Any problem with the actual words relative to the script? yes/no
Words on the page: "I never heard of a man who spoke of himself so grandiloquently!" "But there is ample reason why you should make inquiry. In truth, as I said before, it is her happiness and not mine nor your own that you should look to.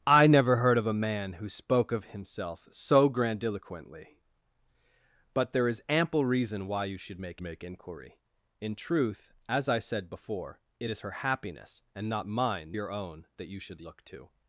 yes